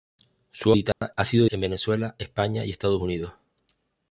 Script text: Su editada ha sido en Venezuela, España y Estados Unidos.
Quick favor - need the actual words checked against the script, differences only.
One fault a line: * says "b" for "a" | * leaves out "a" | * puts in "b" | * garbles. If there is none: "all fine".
all fine